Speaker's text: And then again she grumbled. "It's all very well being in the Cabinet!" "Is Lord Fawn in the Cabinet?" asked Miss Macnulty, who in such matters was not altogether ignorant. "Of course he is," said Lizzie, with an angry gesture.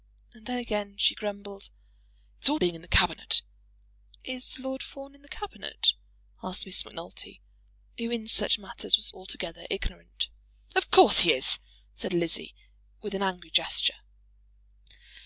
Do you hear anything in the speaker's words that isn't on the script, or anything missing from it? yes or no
yes